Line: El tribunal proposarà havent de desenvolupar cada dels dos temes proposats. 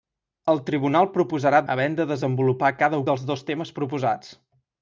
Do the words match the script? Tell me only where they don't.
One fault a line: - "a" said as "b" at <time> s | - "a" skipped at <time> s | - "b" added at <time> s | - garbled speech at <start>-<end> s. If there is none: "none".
none